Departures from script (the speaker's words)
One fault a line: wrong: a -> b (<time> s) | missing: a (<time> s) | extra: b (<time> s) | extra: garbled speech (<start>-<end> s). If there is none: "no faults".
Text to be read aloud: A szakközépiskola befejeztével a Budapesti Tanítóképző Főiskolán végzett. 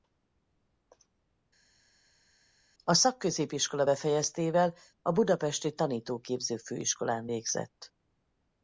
no faults